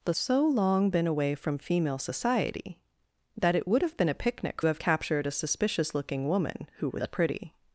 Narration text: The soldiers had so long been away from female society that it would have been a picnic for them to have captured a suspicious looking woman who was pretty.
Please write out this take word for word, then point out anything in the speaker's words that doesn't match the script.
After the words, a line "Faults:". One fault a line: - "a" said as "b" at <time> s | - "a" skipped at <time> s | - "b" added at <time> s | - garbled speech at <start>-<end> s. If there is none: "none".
The so long been away from female society that it would have been a picnic have captured a suspicious looking woman who was pretty.
Faults:
- "soldiers had" skipped at 0.1 s
- "for them to" skipped at 4.6 s